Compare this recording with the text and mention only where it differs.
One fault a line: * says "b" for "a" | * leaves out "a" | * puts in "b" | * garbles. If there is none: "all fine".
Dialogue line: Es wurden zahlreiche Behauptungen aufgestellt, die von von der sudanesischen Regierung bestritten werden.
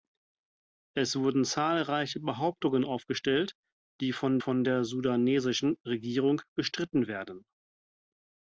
all fine